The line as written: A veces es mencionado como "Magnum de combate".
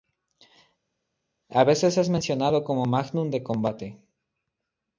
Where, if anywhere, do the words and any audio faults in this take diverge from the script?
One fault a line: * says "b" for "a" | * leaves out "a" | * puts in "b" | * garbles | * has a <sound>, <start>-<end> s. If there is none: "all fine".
all fine